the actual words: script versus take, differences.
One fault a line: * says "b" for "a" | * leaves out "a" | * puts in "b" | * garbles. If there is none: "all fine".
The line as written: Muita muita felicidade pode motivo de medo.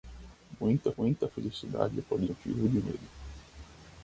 all fine